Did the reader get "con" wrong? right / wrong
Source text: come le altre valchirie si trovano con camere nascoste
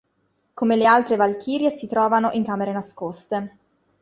wrong